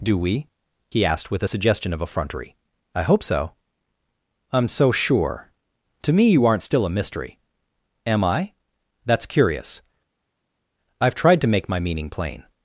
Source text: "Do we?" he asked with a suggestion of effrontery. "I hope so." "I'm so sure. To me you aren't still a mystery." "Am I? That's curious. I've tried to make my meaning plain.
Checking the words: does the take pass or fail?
pass